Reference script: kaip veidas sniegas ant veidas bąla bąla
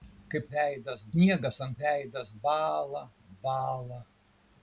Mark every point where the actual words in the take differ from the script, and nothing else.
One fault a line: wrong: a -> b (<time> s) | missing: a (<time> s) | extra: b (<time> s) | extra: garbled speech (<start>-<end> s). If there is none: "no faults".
no faults